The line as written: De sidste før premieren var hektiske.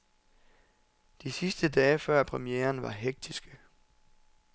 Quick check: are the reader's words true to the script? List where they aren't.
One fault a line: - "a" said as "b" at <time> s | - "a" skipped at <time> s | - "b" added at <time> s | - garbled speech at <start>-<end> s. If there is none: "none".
- "dage" added at 1.7 s